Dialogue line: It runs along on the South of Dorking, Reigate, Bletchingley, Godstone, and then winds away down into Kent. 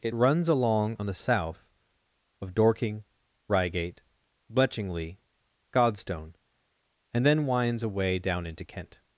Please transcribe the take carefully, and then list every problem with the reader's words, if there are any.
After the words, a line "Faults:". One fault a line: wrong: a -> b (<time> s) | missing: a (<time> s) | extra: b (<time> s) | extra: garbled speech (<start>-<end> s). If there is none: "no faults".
It runs along on the South of Dorking, Reigate, Bletchingley, Godstone, and then winds away down into Kent.
Faults:
no faults